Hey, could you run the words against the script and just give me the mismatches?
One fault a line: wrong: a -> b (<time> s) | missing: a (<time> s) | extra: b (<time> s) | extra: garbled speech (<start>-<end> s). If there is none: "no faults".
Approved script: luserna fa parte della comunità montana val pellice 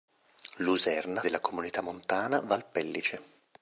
missing: fa parte (1.2 s)